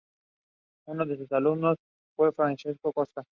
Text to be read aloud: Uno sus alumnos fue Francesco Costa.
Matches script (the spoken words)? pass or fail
fail